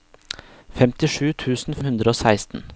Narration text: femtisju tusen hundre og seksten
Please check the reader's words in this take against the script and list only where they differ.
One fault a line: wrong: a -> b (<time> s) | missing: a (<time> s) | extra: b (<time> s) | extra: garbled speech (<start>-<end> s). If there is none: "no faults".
no faults